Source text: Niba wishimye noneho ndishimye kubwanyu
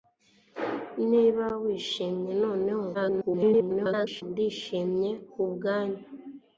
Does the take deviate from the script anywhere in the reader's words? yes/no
yes